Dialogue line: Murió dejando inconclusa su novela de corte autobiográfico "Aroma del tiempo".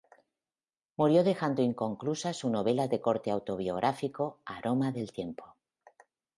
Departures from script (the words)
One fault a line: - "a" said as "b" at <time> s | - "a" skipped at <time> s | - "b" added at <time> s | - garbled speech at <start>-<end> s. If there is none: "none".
none